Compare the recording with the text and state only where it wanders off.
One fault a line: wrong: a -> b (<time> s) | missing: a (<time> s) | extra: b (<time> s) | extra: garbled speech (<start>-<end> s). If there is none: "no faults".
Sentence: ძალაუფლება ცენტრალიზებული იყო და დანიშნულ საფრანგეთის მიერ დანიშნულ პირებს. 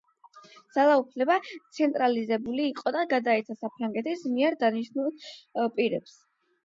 wrong: დანიშნულ -> გადაეცა (3.1 s)